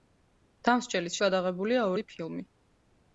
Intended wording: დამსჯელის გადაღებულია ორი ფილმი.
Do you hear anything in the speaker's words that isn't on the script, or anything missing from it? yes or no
no